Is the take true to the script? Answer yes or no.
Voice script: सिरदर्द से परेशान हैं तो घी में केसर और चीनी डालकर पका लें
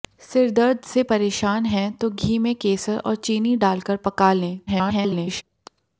no